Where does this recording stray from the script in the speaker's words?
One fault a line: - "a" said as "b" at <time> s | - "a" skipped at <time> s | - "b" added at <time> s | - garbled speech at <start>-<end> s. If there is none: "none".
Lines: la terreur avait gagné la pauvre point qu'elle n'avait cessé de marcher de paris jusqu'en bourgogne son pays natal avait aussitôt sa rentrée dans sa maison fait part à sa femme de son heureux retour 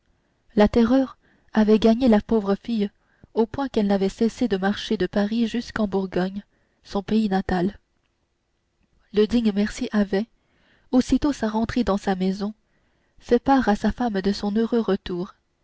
- "fille au" added at 2.5 s
- "le digne mercier" added at 9.1 s